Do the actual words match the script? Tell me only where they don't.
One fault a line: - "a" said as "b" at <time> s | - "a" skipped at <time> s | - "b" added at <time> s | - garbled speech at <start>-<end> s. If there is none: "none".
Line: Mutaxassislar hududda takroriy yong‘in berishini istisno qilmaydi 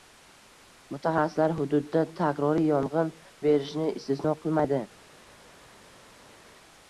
none